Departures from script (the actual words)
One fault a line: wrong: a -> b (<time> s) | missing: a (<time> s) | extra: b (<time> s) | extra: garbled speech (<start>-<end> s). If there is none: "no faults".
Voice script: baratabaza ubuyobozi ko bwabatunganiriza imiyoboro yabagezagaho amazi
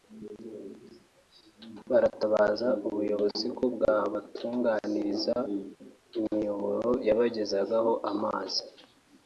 no faults